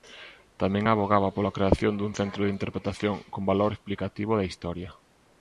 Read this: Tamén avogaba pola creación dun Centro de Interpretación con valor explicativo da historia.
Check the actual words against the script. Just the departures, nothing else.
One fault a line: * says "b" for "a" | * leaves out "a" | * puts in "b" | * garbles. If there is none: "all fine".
all fine